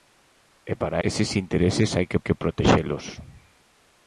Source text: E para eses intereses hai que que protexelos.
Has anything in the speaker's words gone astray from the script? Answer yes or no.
no